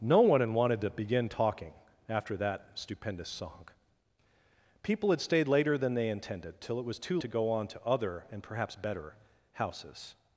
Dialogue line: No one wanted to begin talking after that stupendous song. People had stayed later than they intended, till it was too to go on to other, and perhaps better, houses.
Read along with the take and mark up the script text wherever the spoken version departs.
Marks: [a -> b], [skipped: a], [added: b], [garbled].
No one wanted to begin talking after that stupendous song. People had stayed later than they intended, till it was too to go on to other, and perhaps better, houses.